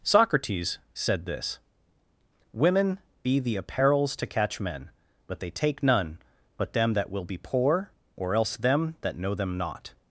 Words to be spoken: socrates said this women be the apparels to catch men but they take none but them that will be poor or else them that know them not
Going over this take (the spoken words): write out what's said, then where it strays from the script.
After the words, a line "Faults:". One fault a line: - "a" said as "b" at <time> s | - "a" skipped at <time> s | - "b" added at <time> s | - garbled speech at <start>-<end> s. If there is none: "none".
socrates said this women be the apparels to catch men but they take none but them that will be poor or else them that know them not
Faults:
none